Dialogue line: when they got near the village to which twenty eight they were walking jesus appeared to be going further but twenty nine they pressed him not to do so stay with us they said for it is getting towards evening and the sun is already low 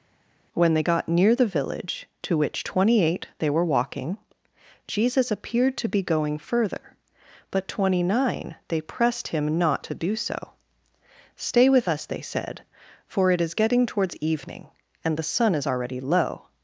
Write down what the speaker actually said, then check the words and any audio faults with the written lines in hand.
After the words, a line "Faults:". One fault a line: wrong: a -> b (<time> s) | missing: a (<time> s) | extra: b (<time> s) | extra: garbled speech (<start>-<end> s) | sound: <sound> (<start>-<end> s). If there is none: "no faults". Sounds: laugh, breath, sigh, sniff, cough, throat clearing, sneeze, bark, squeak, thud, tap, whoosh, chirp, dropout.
when they got near the village to which twenty eight they were walking jesus appeared to be going further but twenty nine they pressed him not to do so stay with us they said for it is getting towards evening and the sun is already low
Faults:
no faults